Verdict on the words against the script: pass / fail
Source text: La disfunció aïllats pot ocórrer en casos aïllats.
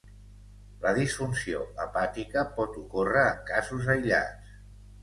fail